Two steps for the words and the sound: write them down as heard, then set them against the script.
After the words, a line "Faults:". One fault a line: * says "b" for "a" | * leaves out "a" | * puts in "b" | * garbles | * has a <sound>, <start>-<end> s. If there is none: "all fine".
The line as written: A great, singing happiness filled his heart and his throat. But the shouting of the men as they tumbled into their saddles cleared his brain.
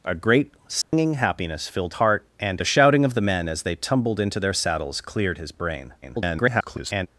A great, singing happiness filled heart and the shouting of the men as they tumbled into their saddles cleared his brain. [garbled]
Faults:
* has a dropout, 0.8-0.9 s
* leaves out "his"
* leaves out "his throat But"
* garbles